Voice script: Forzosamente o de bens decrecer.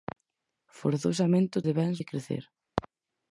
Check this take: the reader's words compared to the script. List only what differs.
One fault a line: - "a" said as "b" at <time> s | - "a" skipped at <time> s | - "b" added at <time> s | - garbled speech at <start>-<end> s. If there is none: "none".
none